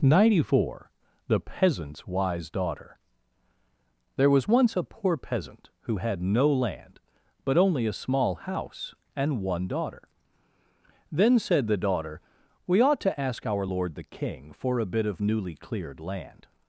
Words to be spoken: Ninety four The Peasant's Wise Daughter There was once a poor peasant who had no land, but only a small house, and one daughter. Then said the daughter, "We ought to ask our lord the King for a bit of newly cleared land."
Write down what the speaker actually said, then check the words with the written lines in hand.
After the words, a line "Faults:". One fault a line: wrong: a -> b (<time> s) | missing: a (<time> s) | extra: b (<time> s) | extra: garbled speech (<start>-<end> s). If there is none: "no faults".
Ninety four The Peasant's Wise Daughter There was once a poor peasant who had no land, but only a small house, and one daughter. Then said the daughter, "We ought to ask our lord the King for a bit of newly cleared land."
Faults:
no faults